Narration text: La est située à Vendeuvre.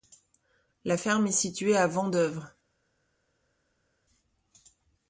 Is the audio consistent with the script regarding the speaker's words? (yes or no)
no